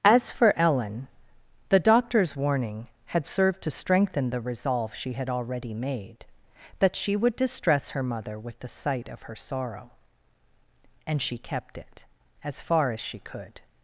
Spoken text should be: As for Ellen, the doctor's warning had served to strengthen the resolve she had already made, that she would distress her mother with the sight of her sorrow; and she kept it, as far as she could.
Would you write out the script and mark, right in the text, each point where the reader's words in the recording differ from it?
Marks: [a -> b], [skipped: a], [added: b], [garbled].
As for Ellen, the doctor's warning had served to strengthen the resolve she had already made, that she would distress her mother with the sight of her sorrow; and she kept it, as far as she could.